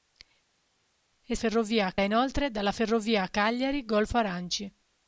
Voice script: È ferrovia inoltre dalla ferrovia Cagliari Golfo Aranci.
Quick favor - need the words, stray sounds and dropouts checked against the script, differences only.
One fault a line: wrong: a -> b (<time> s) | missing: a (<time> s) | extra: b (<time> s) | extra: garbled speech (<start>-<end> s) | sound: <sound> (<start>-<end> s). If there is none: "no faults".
no faults